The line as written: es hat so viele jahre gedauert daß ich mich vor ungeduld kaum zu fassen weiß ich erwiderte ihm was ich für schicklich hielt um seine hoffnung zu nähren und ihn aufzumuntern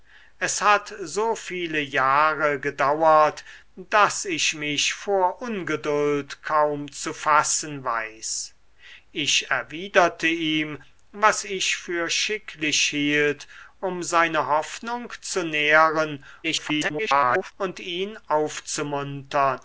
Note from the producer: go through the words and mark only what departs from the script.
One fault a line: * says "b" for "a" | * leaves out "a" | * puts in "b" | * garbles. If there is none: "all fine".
* garbles